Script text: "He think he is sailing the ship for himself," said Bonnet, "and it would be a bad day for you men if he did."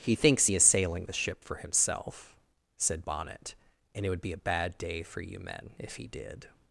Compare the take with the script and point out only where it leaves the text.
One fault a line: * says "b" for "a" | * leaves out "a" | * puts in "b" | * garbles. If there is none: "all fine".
* says "thinks" for "think"